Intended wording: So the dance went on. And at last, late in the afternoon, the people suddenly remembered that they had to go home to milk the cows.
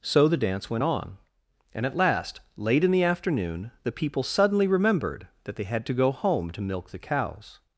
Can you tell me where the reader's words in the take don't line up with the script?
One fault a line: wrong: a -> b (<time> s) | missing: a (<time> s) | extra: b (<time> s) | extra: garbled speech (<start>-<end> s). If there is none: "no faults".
no faults